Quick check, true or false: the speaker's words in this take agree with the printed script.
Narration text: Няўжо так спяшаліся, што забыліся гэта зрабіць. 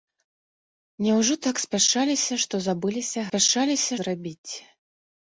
false